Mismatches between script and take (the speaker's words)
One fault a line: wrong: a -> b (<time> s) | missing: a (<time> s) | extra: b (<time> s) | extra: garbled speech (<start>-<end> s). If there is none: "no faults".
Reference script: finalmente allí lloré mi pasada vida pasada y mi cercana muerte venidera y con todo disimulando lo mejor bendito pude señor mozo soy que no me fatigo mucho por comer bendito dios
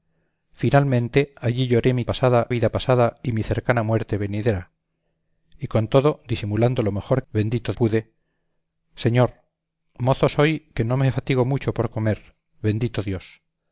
no faults